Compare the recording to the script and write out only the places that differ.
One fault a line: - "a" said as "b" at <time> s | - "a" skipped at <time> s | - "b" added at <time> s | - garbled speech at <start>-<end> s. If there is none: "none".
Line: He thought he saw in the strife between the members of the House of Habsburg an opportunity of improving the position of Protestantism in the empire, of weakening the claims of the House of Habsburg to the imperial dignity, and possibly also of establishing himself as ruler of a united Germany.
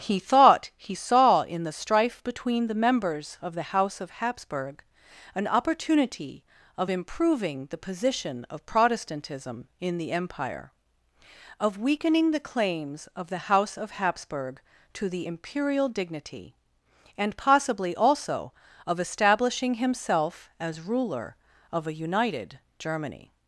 none